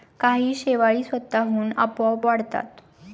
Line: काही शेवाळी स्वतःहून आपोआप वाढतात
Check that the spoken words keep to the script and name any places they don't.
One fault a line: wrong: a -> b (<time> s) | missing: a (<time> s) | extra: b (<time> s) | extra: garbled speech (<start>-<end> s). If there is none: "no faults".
no faults